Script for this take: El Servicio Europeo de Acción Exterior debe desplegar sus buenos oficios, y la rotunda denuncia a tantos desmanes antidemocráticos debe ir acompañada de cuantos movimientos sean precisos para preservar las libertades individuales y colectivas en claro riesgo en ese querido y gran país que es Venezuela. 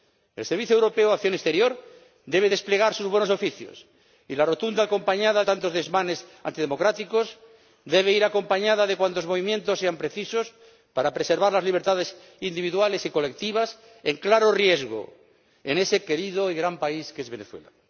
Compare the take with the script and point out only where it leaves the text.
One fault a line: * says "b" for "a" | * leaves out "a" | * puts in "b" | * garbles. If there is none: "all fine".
* says "acompañada" for "denuncia"